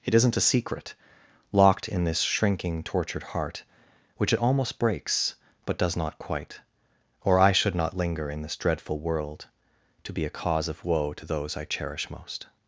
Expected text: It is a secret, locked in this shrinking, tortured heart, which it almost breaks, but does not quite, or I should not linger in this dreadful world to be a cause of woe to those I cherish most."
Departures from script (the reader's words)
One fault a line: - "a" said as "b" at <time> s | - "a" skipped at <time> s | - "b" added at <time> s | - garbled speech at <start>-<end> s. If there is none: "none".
- "is" said as "isn't" at 0.1 s